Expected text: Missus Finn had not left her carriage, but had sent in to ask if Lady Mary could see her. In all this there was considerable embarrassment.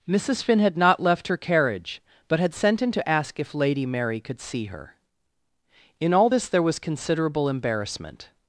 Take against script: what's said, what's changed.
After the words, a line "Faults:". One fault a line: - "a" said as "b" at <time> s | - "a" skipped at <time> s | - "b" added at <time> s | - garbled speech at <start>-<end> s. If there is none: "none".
Missus Finn had not left her carriage, but had sent in to ask if Lady Mary could see her. In all this there was considerable embarrassment.
Faults:
none